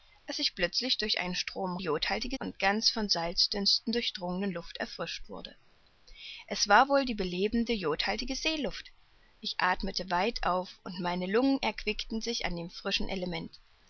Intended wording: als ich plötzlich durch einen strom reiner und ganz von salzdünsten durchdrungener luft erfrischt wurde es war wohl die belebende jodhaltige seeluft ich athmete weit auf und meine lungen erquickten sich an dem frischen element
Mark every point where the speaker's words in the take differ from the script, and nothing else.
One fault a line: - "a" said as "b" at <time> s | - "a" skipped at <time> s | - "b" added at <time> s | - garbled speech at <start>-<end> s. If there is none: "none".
- "reiner" said as "jodhaltige" at 1.8 s